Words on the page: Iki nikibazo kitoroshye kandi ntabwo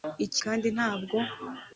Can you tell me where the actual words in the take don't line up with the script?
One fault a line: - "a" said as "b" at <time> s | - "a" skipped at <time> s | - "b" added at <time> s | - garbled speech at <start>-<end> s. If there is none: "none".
- "nikibazo kitoroshye" skipped at 0.4 s